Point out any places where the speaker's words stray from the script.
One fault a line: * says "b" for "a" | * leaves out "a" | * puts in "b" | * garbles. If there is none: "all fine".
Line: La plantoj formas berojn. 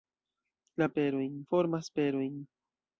* says "berojn" for "plantoj"